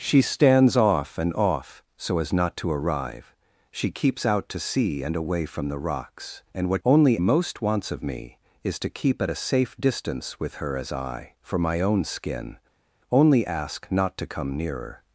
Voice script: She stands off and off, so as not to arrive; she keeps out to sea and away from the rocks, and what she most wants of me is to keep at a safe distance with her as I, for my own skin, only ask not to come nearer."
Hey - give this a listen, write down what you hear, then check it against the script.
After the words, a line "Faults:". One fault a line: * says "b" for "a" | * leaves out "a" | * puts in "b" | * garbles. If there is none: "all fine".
She stands off and off, so as not to arrive; she keeps out to sea and away from the rocks, and what only most wants of me is to keep at a safe distance with her as I, for my own skin, only ask not to come nearer."
Faults:
* says "only" for "she"